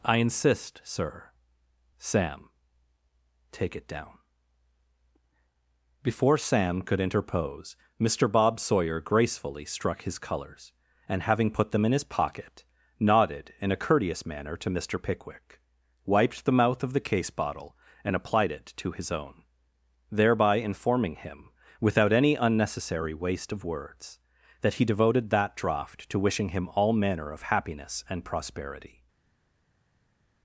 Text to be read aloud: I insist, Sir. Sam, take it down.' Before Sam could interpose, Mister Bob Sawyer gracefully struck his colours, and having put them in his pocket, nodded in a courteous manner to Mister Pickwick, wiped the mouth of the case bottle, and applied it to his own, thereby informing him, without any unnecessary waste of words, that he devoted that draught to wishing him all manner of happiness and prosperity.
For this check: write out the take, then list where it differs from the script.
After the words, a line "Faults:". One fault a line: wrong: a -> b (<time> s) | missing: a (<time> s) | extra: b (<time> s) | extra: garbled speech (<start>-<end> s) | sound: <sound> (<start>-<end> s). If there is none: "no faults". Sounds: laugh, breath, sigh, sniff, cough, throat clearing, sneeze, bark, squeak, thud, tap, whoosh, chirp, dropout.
I insist, Sir. Sam, take it down.' Before Sam could interpose, Mister Bob Sawyer gracefully struck his colours, and having put them in his pocket, nodded in a courteous manner to Mister Pickwick, wiped the mouth of the case bottle, and applied it to his own, thereby informing him, without any unnecessary waste of words, that he devoted that draught to wishing him all manner of happiness and prosperity.
Faults:
no faults